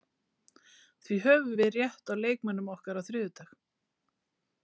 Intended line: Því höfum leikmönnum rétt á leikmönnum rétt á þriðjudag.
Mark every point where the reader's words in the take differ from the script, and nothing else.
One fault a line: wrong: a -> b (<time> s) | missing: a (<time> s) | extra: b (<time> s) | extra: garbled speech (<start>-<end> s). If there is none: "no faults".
wrong: leikmönnum -> við (1.6 s)
wrong: rétt -> okkar (2.8 s)